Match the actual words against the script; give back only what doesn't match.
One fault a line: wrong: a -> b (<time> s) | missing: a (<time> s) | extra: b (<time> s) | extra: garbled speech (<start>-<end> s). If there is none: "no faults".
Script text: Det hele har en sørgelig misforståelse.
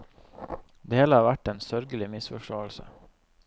extra: vært (1.3 s)